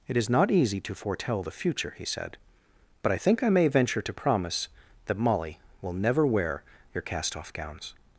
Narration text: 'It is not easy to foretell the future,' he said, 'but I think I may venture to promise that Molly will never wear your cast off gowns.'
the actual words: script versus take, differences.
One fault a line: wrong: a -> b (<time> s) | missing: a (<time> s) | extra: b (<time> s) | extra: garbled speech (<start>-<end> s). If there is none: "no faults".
no faults